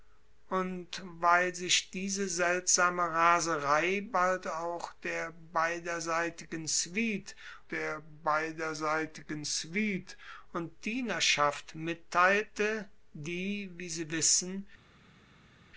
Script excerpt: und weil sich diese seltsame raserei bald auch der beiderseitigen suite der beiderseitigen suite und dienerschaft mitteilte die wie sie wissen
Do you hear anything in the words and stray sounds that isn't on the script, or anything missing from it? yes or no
no